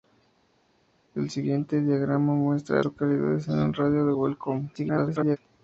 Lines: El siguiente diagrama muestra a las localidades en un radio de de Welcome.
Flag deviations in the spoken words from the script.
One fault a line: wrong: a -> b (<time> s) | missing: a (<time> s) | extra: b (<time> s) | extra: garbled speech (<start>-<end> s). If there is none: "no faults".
missing: las (2.8 s)
extra: garbled speech (4.7-5.4 s)